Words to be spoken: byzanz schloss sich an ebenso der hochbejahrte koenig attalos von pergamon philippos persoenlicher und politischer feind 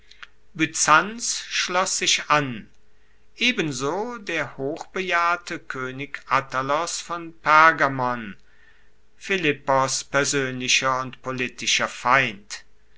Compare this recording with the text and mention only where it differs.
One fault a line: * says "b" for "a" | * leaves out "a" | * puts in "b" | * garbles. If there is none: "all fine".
all fine